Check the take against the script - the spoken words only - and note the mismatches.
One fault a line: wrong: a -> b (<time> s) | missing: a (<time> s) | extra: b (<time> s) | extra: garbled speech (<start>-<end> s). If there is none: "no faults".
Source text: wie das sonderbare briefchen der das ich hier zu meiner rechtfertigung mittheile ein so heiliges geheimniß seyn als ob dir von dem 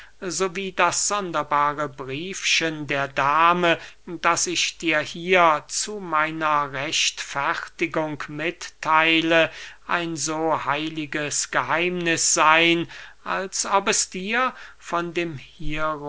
extra: dame (3.1 s)
extra: dir (4.8 s)
extra: es (13.9 s)